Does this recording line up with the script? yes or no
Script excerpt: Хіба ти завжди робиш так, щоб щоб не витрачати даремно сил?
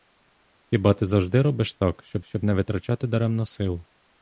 yes